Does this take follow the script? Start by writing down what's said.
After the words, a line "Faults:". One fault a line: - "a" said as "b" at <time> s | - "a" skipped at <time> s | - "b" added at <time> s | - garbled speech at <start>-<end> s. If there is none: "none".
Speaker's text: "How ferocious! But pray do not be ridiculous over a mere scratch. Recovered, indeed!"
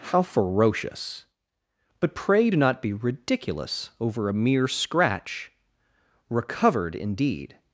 "How ferocious! But pray do not be ridiculous over a mere scratch. Recovered, indeed!"
Faults:
none